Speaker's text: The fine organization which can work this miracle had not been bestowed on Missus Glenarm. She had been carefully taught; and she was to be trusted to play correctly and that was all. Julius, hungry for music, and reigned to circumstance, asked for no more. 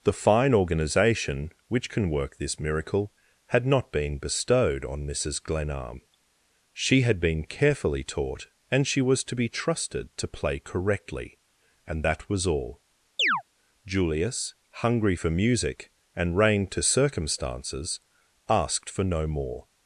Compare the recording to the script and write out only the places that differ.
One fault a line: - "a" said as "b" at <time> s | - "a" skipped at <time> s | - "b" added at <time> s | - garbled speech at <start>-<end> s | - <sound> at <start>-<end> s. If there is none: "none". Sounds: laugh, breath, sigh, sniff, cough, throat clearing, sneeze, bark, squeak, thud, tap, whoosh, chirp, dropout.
- chirp at 13.2-13.4 s
- "circumstance" said as "circumstances" at 16.8 s